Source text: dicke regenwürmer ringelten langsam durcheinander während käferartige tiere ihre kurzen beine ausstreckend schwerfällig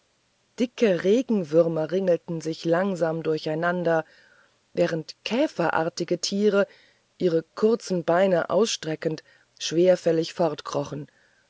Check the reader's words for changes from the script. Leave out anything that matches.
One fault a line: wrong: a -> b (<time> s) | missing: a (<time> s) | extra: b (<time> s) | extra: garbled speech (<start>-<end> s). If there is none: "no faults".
extra: sich (2.4 s)